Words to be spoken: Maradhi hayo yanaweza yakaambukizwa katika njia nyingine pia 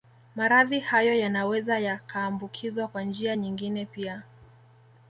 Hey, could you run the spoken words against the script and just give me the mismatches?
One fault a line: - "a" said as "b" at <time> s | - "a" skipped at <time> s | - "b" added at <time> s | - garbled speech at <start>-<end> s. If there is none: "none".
- "katika" said as "kwa" at 2.9 s